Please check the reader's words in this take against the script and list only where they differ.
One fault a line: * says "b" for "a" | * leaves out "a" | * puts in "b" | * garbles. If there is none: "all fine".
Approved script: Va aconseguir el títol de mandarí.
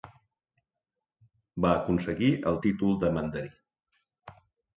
all fine